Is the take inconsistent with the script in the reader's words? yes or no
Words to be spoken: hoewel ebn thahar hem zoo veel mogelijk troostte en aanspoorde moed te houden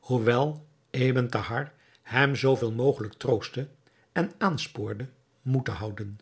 no